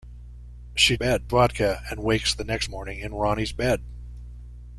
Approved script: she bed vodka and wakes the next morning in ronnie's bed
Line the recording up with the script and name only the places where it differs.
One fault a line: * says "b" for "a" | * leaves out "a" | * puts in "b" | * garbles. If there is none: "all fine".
all fine